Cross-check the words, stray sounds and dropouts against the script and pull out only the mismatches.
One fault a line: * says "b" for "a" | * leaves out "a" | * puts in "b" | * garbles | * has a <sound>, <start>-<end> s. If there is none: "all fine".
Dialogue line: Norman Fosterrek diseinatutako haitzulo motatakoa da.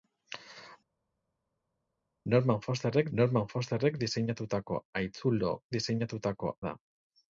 * puts in "norman Fosterrek"
* says "diseinatutako" for "motatakoa"